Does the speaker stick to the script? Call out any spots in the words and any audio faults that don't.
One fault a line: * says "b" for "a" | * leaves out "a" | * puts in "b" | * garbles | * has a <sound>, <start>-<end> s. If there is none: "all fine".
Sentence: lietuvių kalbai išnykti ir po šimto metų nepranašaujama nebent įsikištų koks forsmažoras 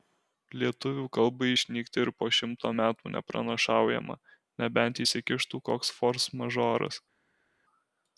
all fine